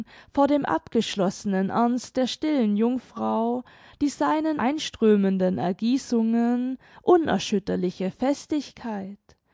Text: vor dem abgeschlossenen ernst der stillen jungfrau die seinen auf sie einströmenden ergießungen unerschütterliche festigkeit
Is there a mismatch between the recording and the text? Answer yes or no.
yes